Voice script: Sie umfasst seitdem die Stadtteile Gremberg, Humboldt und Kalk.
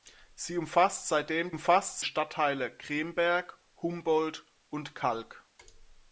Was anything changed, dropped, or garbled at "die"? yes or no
yes